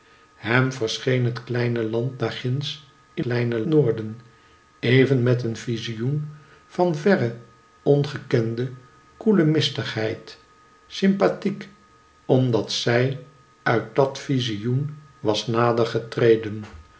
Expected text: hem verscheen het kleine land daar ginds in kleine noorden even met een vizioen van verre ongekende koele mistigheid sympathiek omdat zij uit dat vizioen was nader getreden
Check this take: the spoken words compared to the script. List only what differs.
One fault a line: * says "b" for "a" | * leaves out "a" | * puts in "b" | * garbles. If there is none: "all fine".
all fine